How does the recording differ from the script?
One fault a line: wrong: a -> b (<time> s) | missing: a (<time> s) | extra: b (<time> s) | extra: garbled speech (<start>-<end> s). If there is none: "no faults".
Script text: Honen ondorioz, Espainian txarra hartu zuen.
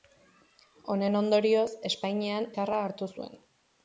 no faults